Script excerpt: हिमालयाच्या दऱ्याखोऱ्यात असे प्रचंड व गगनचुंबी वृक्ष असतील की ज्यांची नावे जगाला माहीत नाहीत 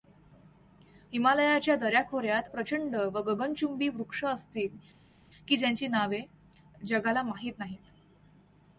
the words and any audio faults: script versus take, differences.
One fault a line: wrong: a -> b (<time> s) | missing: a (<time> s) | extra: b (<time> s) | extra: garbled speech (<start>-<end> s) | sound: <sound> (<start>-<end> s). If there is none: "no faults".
missing: असे (2.5 s)